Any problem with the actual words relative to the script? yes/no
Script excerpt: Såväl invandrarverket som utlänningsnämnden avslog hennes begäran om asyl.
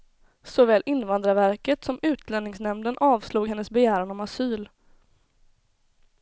no